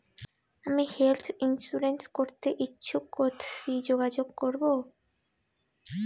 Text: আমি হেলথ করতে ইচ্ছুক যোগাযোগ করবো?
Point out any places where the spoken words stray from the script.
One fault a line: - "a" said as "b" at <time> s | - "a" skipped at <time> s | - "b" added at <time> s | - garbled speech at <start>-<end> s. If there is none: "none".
- "ইন্সুরেন্স" added at 1.4 s
- "কথসি" added at 3.1 s